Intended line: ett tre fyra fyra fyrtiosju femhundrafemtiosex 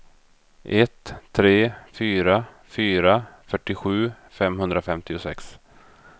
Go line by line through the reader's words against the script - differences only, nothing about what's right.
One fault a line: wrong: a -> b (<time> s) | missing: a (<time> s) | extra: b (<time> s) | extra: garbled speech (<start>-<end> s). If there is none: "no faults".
no faults